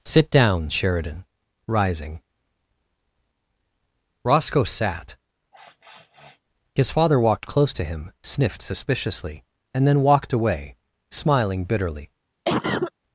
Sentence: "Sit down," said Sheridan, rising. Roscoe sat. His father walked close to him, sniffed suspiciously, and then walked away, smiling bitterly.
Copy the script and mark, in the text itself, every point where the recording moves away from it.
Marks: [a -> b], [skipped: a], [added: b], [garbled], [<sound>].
"Sit down," [skipped: said] Sheridan, rising. Roscoe sat. [sniff] His father walked close to him, sniffed suspiciously, and then walked away, smiling bitterly. [cough]